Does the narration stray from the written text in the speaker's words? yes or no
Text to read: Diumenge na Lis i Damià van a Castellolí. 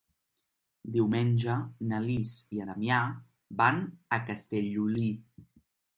no